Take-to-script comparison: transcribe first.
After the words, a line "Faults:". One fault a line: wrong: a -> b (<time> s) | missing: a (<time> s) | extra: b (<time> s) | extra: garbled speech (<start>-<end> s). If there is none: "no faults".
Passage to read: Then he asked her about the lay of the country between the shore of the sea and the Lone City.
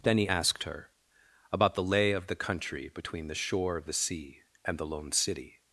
Then he asked her about the lay of the country between the shore of the sea and the Lone City.
Faults:
no faults